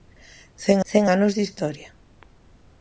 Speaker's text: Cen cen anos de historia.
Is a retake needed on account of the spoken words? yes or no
no